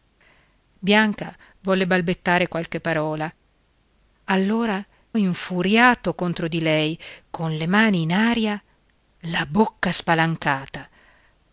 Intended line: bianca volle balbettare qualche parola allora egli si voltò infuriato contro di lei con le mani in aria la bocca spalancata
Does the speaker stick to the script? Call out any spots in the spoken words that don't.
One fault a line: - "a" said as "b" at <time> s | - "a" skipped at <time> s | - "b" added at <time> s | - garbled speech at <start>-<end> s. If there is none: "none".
- "egli si voltò" skipped at 4.8 s